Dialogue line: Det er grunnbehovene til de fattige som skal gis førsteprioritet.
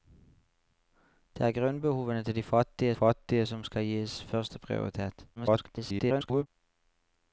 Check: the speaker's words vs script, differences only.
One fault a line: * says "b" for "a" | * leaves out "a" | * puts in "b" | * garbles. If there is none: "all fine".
* puts in "fattige"
* garbles